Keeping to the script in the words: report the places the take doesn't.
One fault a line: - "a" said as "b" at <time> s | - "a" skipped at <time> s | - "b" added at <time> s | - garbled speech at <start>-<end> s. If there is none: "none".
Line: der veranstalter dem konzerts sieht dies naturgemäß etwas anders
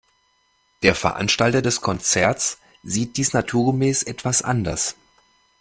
- "dem" said as "des" at 1.6 s